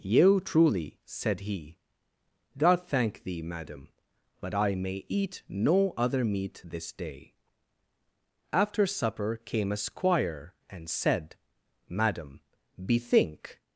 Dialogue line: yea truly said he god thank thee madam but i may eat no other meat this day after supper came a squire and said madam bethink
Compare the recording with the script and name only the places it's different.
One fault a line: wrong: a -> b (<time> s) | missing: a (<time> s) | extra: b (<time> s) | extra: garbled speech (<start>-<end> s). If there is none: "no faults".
no faults